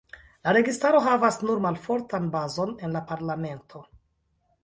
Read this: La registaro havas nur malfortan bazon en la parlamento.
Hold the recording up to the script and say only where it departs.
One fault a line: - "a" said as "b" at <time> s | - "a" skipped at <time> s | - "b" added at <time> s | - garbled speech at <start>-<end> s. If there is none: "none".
none